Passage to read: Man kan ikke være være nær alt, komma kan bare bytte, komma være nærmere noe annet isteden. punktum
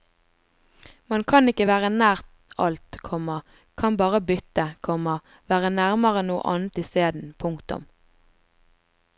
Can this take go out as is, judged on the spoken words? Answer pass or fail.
fail